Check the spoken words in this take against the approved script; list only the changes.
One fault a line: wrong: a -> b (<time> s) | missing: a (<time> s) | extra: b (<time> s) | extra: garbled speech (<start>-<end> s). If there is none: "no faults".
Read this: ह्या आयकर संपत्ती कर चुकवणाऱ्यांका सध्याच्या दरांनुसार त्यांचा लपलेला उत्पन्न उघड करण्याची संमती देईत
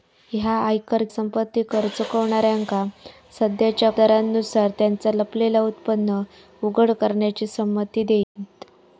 no faults